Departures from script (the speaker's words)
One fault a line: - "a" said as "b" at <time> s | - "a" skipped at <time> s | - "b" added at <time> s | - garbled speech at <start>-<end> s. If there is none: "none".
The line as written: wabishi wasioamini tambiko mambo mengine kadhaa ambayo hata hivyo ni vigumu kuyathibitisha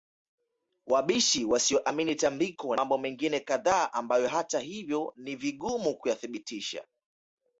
none